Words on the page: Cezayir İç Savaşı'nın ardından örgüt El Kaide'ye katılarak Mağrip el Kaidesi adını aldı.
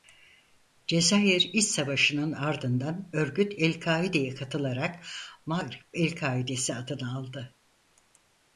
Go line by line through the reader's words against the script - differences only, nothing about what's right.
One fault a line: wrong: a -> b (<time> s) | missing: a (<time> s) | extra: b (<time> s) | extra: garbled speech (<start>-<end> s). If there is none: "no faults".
no faults